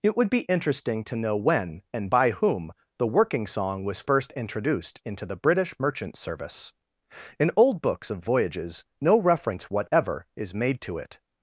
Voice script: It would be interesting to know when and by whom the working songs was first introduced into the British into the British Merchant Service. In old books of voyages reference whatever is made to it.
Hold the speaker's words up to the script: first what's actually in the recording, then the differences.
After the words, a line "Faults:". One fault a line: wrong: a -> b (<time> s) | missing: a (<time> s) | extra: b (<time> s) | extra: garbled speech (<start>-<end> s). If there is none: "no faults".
It would be interesting to know when and by whom the working song was first introduced into the British Merchant Service. In old books of voyages no reference whatever is made to it.
Faults:
wrong: songs -> song (3.5 s)
missing: into the British (5.7 s)
extra: no (9.0 s)